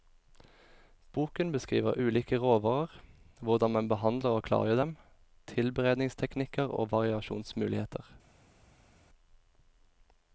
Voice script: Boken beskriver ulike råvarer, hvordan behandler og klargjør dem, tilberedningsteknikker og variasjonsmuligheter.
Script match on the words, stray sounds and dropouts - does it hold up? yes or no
no